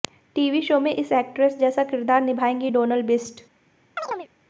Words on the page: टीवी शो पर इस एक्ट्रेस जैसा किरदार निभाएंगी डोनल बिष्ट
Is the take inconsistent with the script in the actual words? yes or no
yes